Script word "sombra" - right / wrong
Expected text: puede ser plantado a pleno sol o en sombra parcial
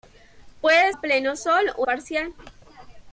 wrong